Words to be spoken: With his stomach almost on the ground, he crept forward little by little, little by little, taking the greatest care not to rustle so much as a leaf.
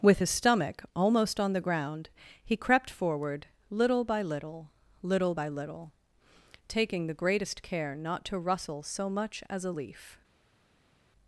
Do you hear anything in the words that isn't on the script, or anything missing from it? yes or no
no